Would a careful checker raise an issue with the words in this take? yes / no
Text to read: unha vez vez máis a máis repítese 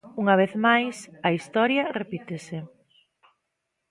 yes